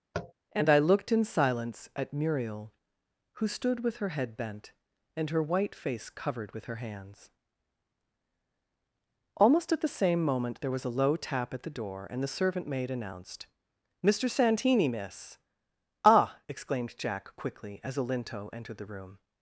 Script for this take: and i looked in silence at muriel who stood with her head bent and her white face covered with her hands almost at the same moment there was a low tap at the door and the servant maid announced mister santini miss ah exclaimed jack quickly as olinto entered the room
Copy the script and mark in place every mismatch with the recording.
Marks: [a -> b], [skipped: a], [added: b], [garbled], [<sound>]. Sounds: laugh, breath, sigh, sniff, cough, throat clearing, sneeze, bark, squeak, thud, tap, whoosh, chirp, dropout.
[tap] and i looked in silence at muriel who stood with her head bent and her white face covered with her hands almost at the same moment there was a low tap at the door and the servant maid announced mister santini miss ah exclaimed jack quickly as olinto entered the room